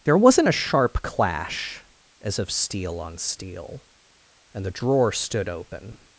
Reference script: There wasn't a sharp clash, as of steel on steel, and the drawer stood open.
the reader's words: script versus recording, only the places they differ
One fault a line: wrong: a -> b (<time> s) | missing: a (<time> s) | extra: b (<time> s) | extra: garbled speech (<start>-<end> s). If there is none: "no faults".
no faults